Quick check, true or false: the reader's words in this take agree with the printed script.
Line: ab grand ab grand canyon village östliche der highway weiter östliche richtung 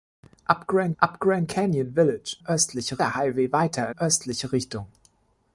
true